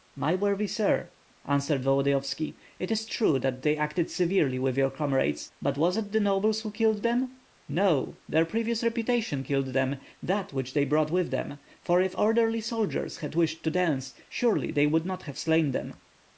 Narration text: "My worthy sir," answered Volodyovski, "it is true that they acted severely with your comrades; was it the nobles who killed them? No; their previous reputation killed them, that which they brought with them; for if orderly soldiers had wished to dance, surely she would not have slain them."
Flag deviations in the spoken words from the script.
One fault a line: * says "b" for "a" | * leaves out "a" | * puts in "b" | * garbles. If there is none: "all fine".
* puts in "but"
* says "they" for "she"